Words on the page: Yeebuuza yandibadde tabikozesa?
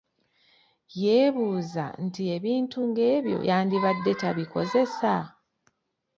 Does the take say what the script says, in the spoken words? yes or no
no